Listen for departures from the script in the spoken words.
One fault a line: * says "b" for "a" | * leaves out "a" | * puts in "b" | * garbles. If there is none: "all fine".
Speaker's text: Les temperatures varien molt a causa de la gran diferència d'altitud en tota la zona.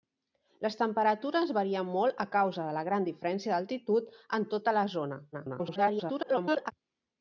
* garbles